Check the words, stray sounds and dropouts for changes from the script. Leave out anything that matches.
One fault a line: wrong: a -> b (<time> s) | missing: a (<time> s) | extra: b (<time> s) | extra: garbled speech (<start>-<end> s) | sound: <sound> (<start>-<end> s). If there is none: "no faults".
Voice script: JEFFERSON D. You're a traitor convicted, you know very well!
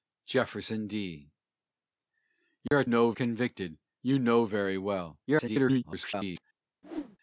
sound: dropout (2.7-2.7 s)
wrong: traitor -> know (2.8 s)
extra: garbled speech (5.3-6.4 s)
sound: whoosh (6.8-7.2 s)